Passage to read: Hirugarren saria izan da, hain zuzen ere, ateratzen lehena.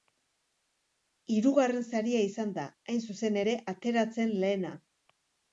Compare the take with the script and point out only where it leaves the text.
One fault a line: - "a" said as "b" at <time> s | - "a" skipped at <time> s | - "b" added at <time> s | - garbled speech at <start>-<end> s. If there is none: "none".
none